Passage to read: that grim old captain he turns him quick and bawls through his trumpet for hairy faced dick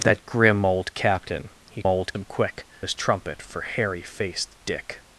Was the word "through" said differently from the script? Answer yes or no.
yes